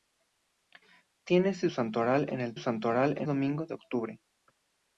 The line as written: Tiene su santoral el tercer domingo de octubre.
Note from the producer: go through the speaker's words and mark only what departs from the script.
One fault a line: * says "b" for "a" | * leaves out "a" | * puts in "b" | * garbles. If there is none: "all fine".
* says "santoral" for "tercer"